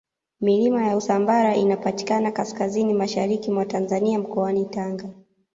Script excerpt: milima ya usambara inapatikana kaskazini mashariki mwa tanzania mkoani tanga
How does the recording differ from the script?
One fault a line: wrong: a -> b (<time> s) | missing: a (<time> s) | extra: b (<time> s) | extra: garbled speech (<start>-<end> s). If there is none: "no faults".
no faults